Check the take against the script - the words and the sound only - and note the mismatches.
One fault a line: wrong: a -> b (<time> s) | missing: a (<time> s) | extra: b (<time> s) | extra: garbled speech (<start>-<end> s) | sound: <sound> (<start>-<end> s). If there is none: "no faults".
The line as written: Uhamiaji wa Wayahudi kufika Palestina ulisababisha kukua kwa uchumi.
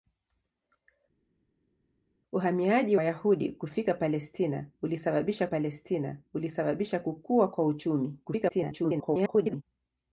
missing: wa (3.0 s)
extra: Palestina ulisababisha (5.4 s)
extra: garbled speech (8.2-9.6 s)